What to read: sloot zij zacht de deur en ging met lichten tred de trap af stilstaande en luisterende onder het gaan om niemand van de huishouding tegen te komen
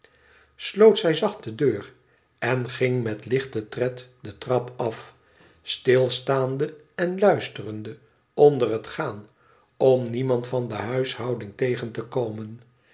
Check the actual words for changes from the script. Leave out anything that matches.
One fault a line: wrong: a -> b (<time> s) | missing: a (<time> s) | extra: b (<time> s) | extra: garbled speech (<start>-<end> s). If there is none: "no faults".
no faults